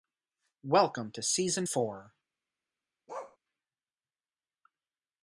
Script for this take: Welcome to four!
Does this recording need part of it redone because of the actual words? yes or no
yes